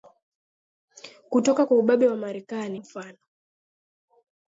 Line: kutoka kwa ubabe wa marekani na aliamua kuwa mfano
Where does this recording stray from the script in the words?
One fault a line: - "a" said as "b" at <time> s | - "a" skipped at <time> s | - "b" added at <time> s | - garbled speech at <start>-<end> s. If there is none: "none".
- "na aliamua kuwa" skipped at 2.8 s